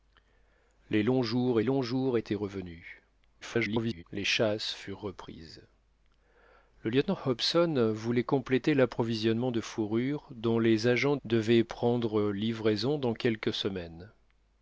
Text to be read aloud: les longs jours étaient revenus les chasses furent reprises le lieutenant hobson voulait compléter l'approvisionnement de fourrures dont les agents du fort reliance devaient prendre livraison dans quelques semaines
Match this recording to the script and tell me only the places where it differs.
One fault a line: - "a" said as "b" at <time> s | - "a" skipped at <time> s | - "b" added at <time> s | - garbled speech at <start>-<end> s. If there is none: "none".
- "longs jours" added at 1.6 s
- garbled speech at 3.4-4.0 s
- "du fort reliance" skipped at 11.2 s